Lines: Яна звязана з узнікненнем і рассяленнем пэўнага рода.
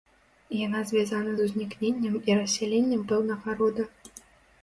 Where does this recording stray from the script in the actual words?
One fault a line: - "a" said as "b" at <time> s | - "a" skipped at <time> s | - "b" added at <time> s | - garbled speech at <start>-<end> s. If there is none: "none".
none